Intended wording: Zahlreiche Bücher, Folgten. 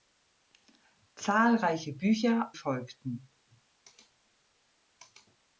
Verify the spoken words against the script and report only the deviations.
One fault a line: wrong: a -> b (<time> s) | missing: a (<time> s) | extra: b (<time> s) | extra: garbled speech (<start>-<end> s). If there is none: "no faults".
no faults